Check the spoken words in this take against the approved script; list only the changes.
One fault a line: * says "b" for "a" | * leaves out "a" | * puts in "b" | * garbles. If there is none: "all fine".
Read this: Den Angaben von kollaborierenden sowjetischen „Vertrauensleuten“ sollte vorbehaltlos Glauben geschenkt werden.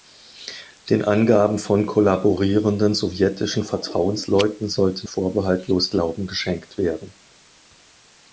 all fine